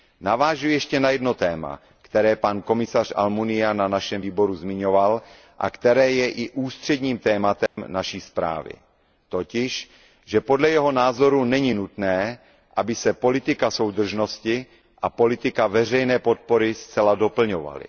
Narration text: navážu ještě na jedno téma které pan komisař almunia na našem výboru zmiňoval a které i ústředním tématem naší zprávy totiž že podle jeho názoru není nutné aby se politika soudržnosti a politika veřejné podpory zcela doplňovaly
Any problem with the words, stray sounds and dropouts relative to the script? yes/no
yes